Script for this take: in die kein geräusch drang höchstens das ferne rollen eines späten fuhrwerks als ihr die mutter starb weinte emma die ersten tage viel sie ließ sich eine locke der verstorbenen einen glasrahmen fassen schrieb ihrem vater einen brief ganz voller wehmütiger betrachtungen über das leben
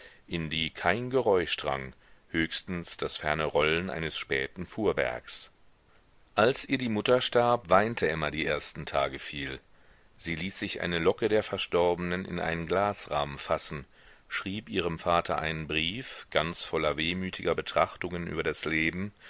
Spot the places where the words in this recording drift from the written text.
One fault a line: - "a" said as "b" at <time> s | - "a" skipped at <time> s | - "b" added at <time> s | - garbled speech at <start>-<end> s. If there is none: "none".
- "in" added at 12.2 s